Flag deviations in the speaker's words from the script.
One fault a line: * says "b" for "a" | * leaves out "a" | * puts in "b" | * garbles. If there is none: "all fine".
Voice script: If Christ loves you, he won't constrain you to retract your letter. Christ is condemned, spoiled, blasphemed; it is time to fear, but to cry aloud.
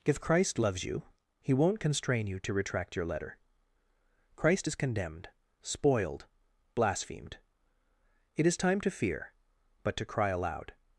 all fine